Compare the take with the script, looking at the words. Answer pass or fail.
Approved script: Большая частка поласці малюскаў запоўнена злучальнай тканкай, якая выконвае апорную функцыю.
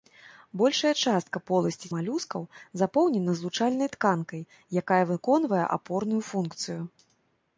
pass